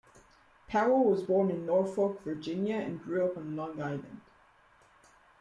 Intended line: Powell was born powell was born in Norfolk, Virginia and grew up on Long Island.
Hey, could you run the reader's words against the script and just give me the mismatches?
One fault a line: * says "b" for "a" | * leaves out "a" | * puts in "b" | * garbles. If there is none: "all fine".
* leaves out "powell was born"